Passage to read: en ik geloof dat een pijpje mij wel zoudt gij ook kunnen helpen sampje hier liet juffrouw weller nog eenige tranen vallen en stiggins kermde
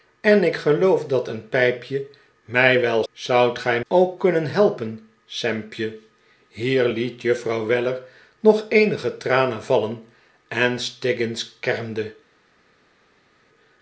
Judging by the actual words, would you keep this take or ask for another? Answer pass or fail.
pass